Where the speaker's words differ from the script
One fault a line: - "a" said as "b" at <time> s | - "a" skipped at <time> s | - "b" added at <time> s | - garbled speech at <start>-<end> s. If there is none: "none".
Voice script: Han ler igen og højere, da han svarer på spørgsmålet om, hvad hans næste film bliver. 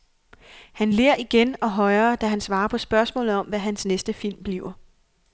none